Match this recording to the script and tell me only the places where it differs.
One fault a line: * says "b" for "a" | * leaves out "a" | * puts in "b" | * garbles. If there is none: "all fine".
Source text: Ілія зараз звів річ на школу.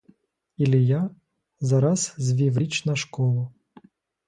all fine